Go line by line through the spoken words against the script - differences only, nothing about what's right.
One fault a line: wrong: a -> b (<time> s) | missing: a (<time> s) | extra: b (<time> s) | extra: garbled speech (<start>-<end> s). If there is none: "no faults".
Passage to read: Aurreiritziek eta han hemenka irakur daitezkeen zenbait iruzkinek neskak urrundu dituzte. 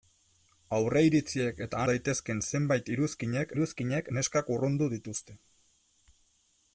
missing: han hemenka irakur (1.8 s)
extra: iruzkinek (3.6 s)